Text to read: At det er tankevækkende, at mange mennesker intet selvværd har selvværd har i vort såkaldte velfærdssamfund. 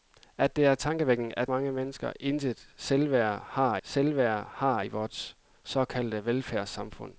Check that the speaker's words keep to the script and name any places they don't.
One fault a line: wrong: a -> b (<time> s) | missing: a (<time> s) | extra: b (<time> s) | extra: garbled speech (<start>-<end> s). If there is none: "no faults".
no faults